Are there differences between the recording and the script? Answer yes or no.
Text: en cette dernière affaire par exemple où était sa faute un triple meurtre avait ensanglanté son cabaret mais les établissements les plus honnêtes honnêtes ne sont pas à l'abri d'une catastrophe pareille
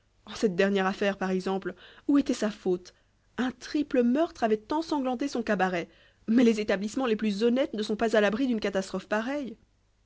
yes